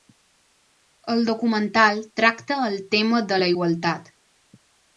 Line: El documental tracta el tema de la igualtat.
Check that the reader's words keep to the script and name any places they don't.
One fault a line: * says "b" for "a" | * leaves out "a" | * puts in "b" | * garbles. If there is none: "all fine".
all fine